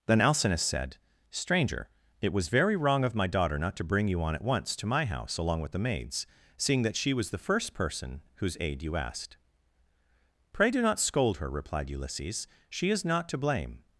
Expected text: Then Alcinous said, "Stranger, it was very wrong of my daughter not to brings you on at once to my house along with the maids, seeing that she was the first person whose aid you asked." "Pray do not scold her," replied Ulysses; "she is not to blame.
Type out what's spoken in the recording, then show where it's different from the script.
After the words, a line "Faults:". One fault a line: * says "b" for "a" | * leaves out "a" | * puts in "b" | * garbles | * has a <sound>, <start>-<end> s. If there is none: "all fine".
Then Alcinous said, "Stranger, it was very wrong of my daughter not to bring you on at once to my house along with the maids, seeing that she was the first person whose aid you asked." "Pray do not scold her," replied Ulysses; "she is not to blame.
Faults:
* says "bring" for "brings"